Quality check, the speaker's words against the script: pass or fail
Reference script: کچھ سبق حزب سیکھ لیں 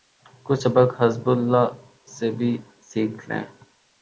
fail